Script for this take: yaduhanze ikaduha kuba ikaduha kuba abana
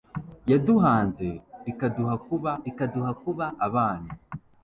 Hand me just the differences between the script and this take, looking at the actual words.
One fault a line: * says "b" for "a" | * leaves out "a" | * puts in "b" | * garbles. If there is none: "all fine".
all fine